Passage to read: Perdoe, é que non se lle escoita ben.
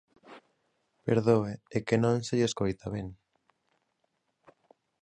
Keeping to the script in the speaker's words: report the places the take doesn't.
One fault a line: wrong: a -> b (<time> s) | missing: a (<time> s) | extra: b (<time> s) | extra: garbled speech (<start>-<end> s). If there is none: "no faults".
no faults